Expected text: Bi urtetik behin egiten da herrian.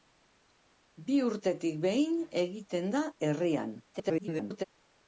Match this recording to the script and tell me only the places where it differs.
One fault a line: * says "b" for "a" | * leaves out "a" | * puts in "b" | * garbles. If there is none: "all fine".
* garbles